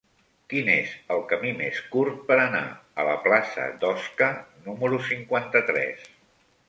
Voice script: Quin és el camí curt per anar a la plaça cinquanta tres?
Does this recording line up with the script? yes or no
no